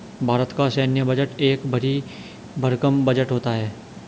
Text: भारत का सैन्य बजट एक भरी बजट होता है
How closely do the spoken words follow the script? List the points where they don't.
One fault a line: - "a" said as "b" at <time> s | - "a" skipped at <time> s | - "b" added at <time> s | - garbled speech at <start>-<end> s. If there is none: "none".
- "भरकम" added at 2.6 s